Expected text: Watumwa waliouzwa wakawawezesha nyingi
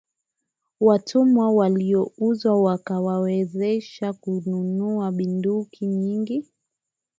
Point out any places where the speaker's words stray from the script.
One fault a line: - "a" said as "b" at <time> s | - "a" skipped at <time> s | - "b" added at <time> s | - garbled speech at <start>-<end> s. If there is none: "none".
- "kununua bunduki" added at 4.1 s